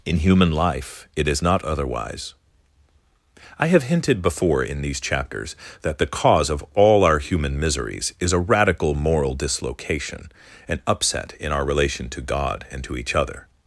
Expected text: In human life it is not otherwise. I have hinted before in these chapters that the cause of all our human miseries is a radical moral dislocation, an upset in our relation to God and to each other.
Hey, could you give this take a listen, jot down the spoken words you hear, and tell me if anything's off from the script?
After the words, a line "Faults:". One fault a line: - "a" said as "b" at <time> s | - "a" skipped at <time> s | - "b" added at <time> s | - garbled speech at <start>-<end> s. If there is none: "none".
In human life it is not otherwise. I have hinted before in these chapters that the cause of all our human miseries is a radical moral dislocation, an upset in our relation to God and to each other.
Faults:
none